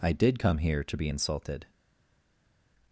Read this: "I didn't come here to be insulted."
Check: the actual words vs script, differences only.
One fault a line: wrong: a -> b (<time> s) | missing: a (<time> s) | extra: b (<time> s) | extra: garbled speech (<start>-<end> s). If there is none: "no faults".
wrong: didn't -> did (0.1 s)